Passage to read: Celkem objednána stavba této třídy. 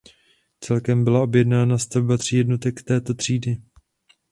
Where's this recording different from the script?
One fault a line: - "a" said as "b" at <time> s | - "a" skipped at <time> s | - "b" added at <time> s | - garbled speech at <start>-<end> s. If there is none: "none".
- "byla" added at 1.0 s
- "tří jednotek" added at 2.1 s